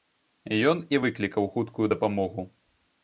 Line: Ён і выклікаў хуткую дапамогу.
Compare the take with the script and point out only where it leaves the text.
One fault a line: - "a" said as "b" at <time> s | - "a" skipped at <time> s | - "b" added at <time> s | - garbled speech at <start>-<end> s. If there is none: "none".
none